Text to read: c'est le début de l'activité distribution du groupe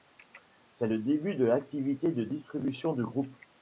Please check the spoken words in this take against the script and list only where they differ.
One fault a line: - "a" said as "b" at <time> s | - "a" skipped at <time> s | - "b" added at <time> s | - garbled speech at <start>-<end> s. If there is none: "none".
- "de" added at 2.1 s